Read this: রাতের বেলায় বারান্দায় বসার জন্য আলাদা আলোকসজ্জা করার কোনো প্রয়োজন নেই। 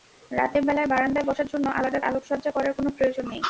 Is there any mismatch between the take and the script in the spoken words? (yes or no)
no